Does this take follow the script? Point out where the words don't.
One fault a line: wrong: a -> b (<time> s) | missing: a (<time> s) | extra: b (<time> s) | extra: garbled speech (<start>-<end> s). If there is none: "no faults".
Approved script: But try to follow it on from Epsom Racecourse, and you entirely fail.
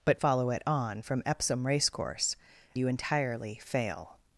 missing: try to (0.2 s)
missing: and (2.4 s)